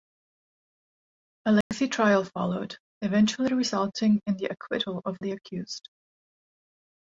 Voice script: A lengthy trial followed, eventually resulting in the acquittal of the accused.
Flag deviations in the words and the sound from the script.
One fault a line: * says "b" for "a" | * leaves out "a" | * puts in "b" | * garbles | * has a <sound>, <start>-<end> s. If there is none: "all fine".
* has a dropout, 1.6-1.7 s